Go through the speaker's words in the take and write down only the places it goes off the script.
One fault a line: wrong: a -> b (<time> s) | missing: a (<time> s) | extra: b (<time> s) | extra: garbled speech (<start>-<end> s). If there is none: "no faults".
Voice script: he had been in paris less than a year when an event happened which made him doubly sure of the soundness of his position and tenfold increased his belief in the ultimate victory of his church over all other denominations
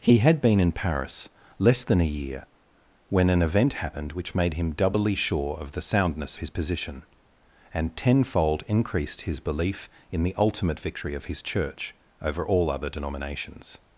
missing: of (6.4 s)